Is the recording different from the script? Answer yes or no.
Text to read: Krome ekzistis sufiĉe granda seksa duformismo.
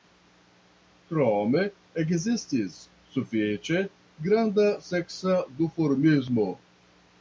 no